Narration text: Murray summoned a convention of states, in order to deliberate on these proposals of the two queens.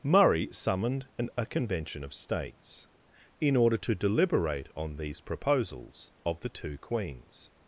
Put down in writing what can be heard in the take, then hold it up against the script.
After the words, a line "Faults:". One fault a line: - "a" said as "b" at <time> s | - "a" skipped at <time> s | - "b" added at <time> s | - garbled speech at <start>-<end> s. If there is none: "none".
Murray summoned an a convention of states, in order to deliberate on these proposals of the two queens.
Faults:
- "an" added at 1.2 s